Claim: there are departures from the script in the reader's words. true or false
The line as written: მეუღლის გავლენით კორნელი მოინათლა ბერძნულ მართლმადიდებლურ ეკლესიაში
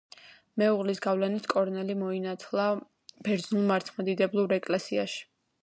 false